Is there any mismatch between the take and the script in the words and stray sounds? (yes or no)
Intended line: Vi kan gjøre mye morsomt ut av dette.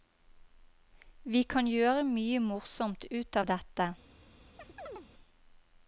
yes